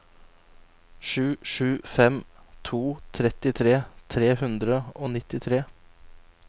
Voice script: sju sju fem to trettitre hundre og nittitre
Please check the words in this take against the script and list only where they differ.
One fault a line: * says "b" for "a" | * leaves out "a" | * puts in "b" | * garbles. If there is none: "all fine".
* puts in "tre"